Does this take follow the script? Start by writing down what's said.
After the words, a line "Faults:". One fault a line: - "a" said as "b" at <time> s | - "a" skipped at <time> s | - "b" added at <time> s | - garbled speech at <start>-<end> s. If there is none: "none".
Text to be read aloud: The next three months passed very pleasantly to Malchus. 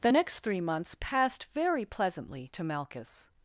The next three months passed very pleasantly to Malchus.
Faults:
none